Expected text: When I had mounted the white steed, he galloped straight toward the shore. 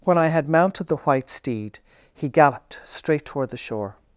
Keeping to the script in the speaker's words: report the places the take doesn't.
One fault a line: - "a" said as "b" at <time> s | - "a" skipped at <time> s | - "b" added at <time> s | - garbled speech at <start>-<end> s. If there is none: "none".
none